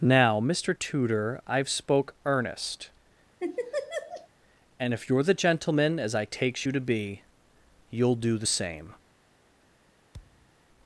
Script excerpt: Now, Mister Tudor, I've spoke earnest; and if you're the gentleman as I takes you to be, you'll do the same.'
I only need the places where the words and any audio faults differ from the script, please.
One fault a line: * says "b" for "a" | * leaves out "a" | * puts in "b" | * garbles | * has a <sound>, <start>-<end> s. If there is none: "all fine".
* has a laugh, 3.4-4.3 s
* has a thud, 10.1-10.5 s